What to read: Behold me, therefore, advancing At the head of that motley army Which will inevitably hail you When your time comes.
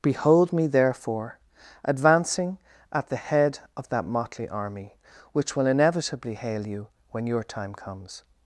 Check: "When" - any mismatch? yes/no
no